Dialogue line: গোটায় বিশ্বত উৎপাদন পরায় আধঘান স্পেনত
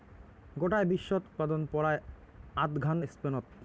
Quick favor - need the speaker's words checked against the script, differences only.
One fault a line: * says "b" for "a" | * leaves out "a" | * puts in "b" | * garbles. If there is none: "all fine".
all fine